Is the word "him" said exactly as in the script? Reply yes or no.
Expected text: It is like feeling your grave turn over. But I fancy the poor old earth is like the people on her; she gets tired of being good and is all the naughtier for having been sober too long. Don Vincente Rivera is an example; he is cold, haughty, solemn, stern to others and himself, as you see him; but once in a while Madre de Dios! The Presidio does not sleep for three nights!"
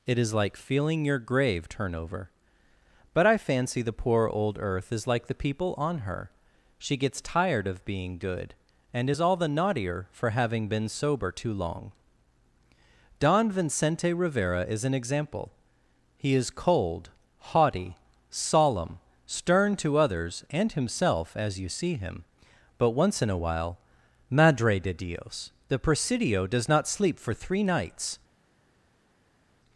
yes